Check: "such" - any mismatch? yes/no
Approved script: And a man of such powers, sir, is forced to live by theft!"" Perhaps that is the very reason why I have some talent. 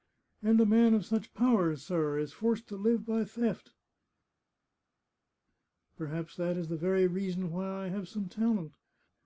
no